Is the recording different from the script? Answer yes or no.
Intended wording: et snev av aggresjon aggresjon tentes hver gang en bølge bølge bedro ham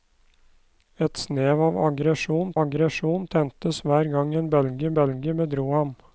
no